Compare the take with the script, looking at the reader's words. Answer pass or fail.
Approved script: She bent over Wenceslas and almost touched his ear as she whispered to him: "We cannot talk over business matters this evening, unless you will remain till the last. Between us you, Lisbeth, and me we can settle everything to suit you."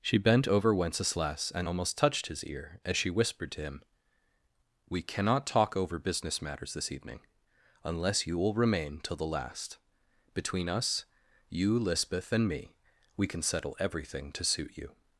pass